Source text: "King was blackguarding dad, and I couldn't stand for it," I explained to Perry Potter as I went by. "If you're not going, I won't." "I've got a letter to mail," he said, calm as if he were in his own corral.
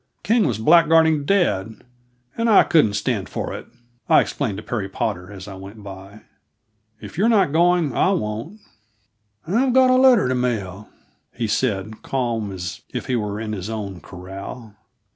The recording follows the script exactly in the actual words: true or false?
true